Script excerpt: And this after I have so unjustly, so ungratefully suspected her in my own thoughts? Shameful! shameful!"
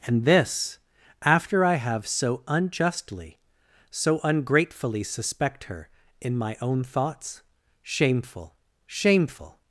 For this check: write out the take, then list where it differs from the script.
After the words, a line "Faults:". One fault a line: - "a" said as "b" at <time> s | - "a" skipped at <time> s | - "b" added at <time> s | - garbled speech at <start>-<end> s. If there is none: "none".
And this after I have so unjustly, so ungratefully suspect her in my own thoughts? Shameful! shameful!"
Faults:
- "suspected" said as "suspect" at 5.0 s